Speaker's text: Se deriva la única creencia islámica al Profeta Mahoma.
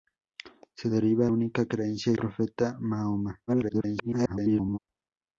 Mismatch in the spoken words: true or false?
true